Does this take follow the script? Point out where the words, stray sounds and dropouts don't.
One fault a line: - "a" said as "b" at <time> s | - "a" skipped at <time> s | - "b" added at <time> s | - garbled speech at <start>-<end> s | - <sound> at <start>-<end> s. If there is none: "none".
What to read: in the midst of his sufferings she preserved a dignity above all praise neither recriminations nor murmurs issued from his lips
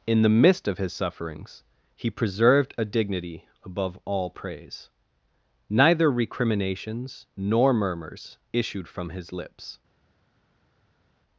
- "she" said as "he" at 1.9 s